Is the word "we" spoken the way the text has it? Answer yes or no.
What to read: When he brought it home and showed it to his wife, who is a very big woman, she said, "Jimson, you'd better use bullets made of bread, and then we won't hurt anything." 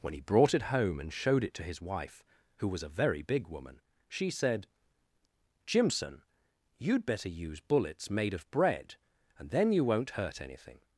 no